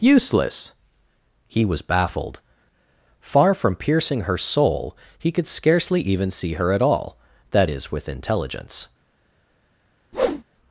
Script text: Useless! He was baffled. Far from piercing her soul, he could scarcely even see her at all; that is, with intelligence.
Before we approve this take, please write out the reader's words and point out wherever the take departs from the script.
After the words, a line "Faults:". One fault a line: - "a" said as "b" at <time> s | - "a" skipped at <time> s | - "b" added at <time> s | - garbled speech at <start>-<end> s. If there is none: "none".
Useless! He was baffled. Far from piercing her soul, he could scarcely even see her at all; that is, with intelligence.
Faults:
none